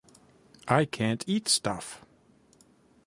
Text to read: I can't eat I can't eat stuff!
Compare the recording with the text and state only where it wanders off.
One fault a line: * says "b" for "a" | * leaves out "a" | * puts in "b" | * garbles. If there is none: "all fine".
* leaves out "I can't eat"